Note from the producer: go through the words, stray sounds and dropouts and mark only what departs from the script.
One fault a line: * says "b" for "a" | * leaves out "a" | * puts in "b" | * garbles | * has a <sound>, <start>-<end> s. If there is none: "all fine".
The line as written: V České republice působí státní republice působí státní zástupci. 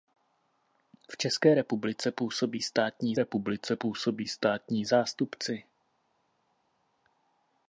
all fine